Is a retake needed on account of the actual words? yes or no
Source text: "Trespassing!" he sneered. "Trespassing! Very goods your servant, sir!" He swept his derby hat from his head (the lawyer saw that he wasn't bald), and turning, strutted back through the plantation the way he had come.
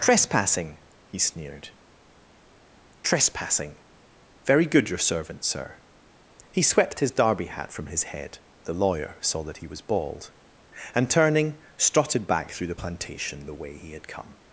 yes